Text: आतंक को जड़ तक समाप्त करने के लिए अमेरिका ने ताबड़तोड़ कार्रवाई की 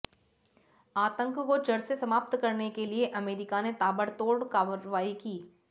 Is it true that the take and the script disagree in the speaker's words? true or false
true